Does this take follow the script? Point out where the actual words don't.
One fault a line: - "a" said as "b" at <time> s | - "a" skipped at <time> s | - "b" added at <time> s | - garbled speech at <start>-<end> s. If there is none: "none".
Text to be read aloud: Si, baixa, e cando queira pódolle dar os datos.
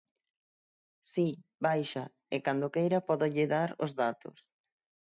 none